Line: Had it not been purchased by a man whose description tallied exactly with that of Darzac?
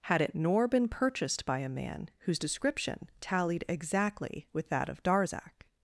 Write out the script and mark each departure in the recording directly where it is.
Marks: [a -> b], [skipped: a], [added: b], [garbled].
Had it [not -> nor] been purchased by a man whose description tallied exactly with that of Darzac?